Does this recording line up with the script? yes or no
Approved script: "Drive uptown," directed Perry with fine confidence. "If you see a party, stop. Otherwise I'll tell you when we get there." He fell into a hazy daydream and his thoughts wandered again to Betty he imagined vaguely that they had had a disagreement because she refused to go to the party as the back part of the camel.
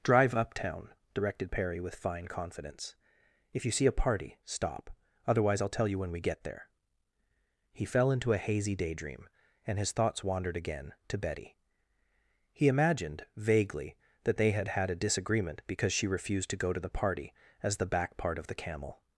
yes